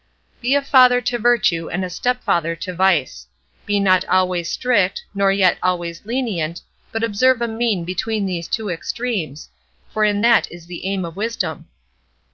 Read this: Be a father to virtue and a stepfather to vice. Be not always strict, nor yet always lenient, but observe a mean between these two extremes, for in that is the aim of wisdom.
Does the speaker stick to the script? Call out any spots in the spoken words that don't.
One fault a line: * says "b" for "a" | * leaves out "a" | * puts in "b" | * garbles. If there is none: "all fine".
all fine